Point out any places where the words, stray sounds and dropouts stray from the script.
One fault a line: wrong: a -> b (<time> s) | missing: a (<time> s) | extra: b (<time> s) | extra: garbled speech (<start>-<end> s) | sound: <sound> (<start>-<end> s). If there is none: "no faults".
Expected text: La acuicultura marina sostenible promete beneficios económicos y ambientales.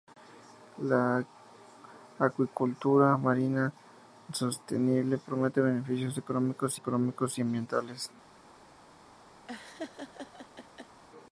extra: económicos (6.7 s)
sound: laugh (9.5-11.0 s)